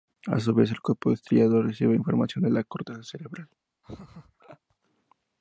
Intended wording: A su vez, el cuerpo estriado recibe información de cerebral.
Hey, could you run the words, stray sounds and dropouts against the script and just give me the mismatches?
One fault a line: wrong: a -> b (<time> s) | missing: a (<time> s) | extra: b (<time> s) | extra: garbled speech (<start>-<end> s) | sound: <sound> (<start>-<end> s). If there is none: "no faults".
extra: la corteza (2.5 s)
sound: laugh (3.8-4.6 s)